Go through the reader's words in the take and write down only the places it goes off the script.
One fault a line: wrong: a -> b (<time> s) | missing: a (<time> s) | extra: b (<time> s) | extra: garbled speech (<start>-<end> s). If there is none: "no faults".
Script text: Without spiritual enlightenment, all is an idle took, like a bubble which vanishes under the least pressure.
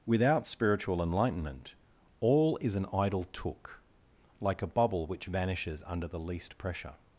no faults